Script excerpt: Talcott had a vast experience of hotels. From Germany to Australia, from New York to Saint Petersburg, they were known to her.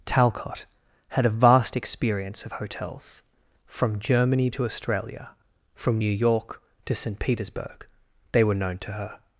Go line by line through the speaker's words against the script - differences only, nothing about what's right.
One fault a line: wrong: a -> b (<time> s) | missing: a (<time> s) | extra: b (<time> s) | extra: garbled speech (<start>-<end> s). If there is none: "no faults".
no faults